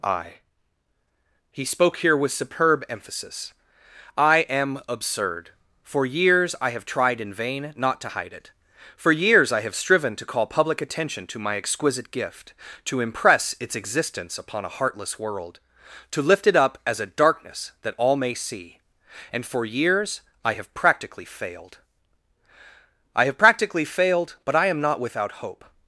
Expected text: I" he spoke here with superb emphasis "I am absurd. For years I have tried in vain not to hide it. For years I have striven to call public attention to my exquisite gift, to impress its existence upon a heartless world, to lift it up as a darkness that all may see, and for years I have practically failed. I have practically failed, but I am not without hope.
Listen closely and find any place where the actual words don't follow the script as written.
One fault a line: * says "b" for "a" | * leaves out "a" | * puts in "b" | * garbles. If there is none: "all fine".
all fine